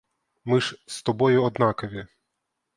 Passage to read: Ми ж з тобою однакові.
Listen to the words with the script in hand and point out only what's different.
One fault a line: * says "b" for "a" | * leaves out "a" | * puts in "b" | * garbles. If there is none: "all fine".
all fine